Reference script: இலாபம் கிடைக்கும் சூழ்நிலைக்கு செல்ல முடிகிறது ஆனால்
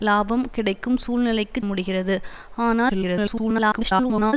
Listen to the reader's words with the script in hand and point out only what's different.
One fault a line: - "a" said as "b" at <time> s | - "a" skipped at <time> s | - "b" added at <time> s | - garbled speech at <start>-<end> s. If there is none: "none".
- "செல்ல" skipped at 1.6 s
- garbled speech at 2.9-4.3 s